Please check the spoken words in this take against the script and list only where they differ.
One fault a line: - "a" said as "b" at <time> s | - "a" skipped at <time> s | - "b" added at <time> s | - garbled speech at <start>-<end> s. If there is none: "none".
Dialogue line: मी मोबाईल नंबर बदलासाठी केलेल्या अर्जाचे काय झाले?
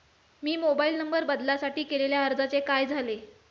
none